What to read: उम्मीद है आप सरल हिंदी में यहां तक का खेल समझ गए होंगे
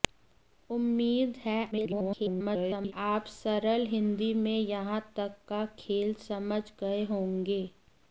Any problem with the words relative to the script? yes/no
yes